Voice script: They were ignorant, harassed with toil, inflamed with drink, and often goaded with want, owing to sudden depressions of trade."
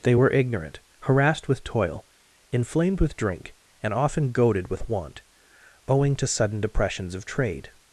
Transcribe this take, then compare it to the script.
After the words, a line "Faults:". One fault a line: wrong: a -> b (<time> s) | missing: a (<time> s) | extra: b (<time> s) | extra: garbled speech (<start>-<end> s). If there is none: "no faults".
They were ignorant, harassed with toil, inflamed with drink, and often goaded with want, owing to sudden depressions of trade."
Faults:
no faults